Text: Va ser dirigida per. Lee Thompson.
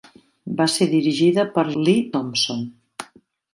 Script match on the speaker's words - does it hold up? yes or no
yes